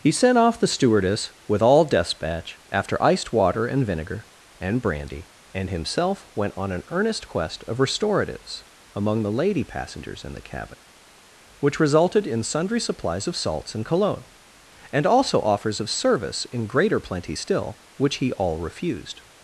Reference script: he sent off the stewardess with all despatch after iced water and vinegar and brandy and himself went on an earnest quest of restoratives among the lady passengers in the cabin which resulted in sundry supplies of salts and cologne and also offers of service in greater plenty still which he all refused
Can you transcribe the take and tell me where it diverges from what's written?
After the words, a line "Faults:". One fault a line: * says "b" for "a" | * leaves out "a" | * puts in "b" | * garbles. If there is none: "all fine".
he sent off the stewardess with all despatch after iced water and vinegar and brandy and himself went on an earnest quest of restoratives among the lady passengers in the cabin which resulted in sundry supplies of salts and cologne and also offers of service in greater plenty still which he all refused
Faults:
all fine